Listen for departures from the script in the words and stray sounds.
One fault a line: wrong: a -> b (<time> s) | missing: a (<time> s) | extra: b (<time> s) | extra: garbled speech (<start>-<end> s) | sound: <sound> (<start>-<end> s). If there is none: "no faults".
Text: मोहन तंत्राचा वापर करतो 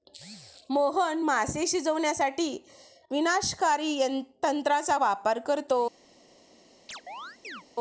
extra: मासे शिजवण्यासाठी विनाशकारी (1.2 s)
sound: chirp (6.9-7.6 s)